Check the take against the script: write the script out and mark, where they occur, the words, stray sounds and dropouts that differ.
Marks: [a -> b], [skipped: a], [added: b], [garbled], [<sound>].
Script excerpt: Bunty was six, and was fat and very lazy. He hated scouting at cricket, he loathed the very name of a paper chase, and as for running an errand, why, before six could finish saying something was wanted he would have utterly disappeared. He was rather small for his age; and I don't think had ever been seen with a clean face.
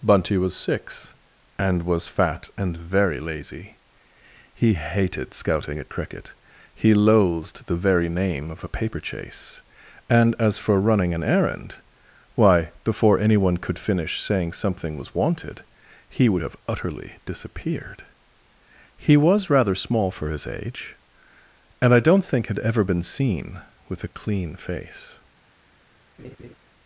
Bunty was six, and was fat and very lazy. He hated scouting at cricket, he loathed the very name of a paper chase, and as for running an errand, why, before [six -> anyone] could finish saying something was wanted he would have utterly disappeared. He was rather small for his age; and I don't think had ever been seen with a clean face. [laugh]